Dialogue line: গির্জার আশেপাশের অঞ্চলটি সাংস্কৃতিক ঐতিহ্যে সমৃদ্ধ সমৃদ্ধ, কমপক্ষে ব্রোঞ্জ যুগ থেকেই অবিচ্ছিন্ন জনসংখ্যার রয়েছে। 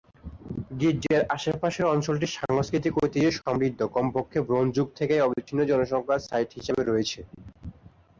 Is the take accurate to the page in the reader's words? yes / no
no